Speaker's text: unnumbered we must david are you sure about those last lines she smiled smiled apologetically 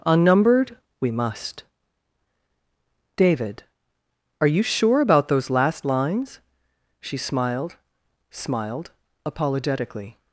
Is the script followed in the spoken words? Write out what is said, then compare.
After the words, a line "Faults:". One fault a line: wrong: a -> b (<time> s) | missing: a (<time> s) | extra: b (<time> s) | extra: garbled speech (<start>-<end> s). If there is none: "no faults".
unnumbered we must david are you sure about those last lines she smiled smiled apologetically
Faults:
no faults